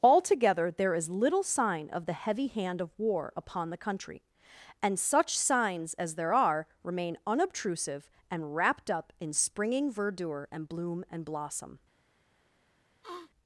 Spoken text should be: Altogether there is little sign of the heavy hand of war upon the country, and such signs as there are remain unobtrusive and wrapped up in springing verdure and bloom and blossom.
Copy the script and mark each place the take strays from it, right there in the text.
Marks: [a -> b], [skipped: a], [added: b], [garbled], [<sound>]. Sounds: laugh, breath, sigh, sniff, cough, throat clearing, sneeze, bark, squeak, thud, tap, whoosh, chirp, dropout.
Altogether there is little sign of the heavy hand of war upon the country, and such signs as there are remain unobtrusive and wrapped up in springing verdure and bloom and blossom. [sniff]